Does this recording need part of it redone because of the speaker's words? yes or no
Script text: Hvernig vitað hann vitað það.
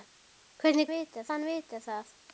no